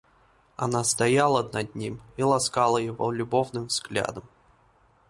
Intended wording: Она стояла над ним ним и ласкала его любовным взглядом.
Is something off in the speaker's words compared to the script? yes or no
yes